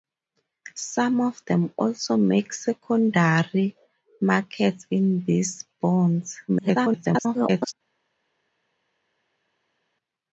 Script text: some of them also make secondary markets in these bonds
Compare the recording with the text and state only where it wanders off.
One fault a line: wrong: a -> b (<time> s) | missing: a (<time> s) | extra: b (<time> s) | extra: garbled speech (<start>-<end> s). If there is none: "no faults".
extra: garbled speech (6.5-7.7 s)